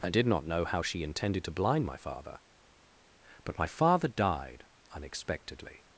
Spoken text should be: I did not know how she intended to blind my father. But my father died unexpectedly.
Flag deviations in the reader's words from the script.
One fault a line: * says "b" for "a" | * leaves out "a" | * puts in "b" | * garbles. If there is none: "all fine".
all fine